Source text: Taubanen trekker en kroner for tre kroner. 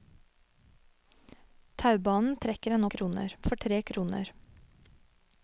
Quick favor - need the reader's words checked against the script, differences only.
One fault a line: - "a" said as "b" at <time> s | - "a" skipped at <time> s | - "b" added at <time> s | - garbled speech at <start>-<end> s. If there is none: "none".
none